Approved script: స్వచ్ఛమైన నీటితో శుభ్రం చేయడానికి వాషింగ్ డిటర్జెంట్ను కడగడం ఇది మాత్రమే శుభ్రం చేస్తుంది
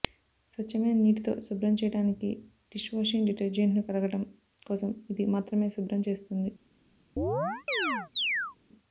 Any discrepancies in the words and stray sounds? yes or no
yes